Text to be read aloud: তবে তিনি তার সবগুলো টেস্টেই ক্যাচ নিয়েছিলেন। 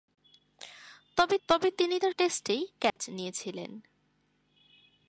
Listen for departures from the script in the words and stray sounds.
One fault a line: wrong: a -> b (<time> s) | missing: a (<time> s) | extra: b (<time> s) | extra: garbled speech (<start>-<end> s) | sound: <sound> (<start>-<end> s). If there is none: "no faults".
extra: তবে (1.5 s)
missing: সবগুলো (2.1 s)
sound: dropout (2.9-3.0 s)